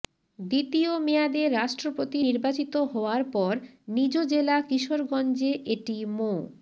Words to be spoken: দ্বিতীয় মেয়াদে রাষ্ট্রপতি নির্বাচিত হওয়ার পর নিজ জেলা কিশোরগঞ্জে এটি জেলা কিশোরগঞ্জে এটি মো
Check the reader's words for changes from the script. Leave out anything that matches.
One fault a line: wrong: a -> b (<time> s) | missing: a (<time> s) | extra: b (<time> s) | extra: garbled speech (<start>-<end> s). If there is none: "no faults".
missing: জেলা কিশোরগঞ্জে এটি (6.0 s)